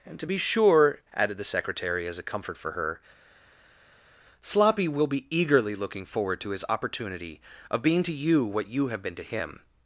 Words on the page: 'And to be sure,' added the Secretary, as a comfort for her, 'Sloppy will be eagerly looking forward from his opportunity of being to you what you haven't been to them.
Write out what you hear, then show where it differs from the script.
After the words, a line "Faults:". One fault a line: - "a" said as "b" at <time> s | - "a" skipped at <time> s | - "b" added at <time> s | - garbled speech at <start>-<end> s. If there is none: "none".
'And to be sure,' added the Secretary, as a comfort for her, 'Sloppy will be eagerly looking forward to his opportunity of being to you what you have been to him.
Faults:
- "from" said as "to" at 6.4 s
- "haven't" said as "have" at 8.9 s
- "them" said as "him" at 9.2 s